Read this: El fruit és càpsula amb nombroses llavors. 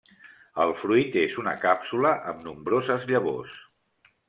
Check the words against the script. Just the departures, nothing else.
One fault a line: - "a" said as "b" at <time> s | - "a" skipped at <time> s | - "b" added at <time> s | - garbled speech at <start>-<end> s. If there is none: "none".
- "una" added at 1.4 s